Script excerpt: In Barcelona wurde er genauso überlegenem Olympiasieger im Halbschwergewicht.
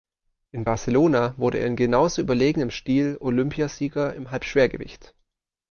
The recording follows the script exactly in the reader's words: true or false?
false